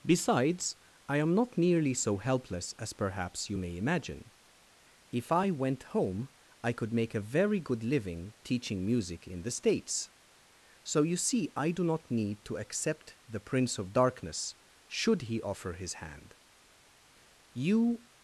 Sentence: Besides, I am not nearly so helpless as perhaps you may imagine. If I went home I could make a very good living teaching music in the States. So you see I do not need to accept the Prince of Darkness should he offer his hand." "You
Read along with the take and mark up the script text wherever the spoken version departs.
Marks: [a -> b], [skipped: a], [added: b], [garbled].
Besides, I am not nearly so helpless as perhaps you may imagine. If I went home I could make a very good living teaching music in the States. So you see I do not need to accept the Prince of Darkness should he offer his hand." "You